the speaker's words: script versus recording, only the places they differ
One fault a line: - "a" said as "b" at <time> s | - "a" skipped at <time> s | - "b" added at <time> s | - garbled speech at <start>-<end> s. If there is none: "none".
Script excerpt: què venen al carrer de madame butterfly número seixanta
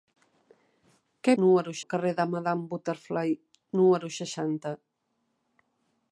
- "venen" said as "número" at 1.4 s